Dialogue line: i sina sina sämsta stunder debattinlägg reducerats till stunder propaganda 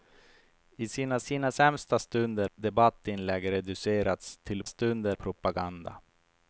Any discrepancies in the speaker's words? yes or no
no